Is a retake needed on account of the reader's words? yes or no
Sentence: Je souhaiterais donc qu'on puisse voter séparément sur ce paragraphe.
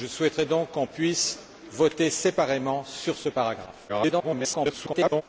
yes